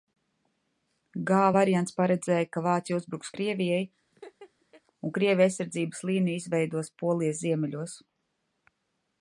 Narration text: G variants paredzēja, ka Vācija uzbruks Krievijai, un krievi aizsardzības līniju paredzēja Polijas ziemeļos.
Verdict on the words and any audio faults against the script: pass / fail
fail